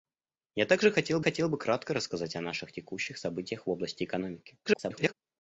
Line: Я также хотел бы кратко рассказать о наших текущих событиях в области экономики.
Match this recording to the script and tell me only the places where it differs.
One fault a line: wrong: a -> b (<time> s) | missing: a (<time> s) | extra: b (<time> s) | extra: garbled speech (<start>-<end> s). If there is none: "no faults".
extra: хотел (1.2 s)
extra: garbled speech (4.6-5.1 s)